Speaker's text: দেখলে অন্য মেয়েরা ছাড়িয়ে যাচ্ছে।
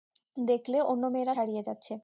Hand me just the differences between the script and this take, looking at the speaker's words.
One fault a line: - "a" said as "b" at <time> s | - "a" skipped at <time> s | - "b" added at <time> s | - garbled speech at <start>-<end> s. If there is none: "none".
none